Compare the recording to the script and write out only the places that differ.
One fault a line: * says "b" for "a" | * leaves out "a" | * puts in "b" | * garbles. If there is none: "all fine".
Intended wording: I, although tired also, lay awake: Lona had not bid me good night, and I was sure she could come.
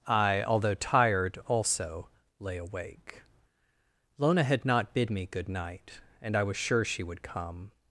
* says "would" for "could"